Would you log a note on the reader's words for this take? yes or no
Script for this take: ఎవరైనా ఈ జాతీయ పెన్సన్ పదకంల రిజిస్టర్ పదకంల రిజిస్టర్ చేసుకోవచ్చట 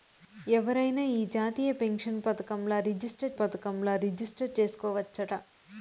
no